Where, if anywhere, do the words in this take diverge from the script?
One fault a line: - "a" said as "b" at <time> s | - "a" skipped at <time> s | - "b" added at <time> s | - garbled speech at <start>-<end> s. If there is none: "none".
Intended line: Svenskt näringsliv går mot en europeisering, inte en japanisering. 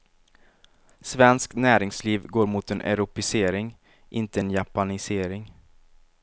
none